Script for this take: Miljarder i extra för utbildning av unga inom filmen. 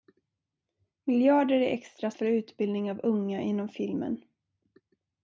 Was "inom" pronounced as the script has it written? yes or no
yes